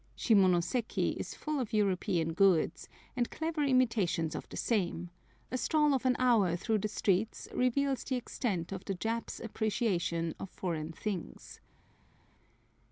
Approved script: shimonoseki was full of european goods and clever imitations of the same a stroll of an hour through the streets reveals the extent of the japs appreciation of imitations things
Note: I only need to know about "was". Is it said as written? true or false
false